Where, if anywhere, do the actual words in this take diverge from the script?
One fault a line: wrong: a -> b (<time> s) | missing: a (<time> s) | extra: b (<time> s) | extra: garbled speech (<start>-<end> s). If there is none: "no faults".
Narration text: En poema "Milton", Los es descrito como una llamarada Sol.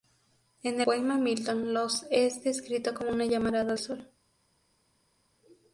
no faults